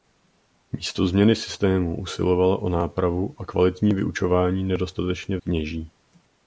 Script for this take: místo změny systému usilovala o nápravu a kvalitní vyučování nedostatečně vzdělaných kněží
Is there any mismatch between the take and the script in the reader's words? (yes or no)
yes